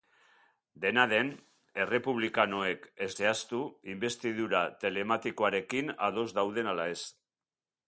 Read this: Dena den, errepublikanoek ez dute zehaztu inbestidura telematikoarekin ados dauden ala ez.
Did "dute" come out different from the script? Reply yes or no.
yes